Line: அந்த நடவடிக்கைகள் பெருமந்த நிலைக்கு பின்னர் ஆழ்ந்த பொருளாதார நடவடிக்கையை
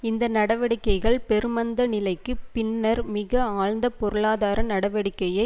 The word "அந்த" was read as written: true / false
false